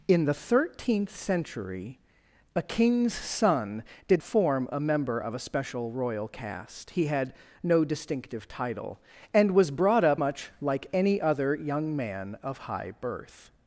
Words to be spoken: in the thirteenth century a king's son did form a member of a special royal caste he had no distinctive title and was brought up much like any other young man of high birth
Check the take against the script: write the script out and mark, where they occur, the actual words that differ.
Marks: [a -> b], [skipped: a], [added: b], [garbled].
in the thirteenth century a king's son did form a member of a special royal caste he had no distinctive title and was brought up much like any other young man of high birth